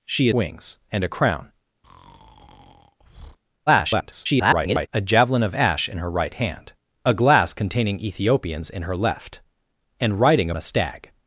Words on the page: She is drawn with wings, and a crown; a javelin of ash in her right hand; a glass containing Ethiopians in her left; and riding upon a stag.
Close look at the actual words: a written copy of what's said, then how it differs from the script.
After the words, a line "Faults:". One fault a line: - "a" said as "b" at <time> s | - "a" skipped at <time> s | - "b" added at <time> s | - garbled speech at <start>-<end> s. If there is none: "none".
She wings, and a crown; [garbled] a javelin of ash in her right hand; a glass containing Ethiopians in her left; and riding a stag.
Faults:
- "is drawn with" skipped at 0.3 s
- garbled speech at 3.7-4.9 s
- "upon" skipped at 10.5 s